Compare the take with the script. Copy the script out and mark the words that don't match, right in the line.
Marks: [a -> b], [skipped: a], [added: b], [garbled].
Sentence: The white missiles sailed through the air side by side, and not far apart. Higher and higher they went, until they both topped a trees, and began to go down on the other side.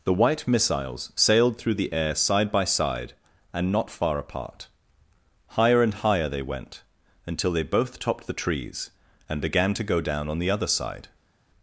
The white missiles sailed through the air side by side, and not far apart. Higher and higher they went, until they both topped [a -> the] trees, and began to go down on the other side.